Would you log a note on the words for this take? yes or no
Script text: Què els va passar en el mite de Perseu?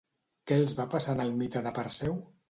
no